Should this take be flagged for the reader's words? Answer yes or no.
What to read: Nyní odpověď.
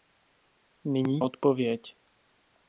no